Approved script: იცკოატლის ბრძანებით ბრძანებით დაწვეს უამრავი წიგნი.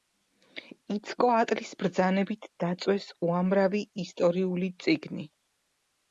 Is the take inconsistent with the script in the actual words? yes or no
yes